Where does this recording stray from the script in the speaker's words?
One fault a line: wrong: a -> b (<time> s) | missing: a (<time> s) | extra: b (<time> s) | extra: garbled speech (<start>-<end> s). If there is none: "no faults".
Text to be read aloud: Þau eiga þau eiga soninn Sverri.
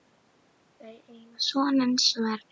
missing: þau eiga (1.4 s)